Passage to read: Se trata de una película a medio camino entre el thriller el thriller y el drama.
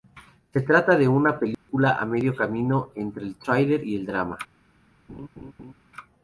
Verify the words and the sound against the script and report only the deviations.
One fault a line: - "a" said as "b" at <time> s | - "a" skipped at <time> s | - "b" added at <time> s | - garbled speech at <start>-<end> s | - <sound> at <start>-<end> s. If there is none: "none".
- dropout at 1.5-1.7 s
- "el thriller" skipped at 3.8 s
- laugh at 5.1-5.7 s